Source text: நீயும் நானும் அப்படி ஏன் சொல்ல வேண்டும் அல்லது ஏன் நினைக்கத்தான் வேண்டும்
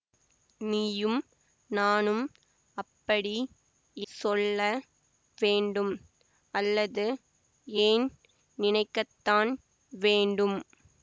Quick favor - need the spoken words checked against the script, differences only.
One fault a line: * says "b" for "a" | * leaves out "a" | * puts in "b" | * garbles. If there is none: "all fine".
* leaves out "ஏன்"